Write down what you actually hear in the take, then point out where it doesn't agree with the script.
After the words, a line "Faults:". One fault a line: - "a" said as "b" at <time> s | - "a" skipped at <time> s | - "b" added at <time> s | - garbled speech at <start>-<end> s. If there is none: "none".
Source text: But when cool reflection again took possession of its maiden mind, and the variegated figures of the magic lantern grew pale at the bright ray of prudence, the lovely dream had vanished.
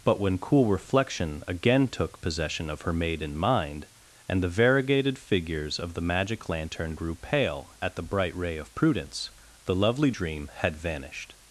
But when cool reflection again took possession of her maiden mind, and the variegated figures of the magic lantern grew pale at the bright ray of prudence, the lovely dream had vanished.
Faults:
- "its" said as "her" at 2.8 s